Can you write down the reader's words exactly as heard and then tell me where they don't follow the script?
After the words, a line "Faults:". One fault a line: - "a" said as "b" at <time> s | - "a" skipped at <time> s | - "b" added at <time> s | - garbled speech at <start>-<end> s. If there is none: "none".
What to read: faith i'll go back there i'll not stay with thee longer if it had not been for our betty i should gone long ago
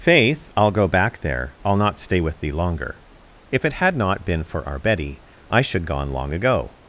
faith i'll go back there i'll not stay with thee longer if it had not been for our betty i should gone long ago
Faults:
none